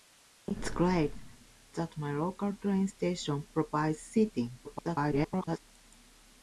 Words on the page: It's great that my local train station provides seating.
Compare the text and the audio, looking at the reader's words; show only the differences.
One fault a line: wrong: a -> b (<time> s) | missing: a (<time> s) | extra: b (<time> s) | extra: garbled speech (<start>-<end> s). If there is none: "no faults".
extra: garbled speech (4.6-5.6 s)